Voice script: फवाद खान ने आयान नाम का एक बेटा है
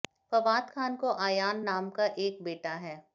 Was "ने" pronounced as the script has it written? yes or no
no